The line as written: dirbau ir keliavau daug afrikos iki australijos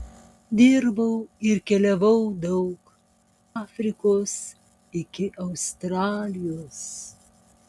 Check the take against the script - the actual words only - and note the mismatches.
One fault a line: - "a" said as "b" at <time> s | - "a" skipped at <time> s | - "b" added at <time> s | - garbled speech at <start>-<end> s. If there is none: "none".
none